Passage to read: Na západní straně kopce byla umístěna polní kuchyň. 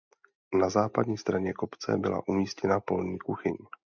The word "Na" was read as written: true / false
true